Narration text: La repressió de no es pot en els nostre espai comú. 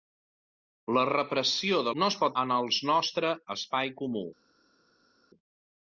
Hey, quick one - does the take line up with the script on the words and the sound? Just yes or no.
yes